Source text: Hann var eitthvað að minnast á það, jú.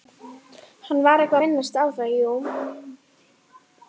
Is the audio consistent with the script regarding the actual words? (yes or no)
no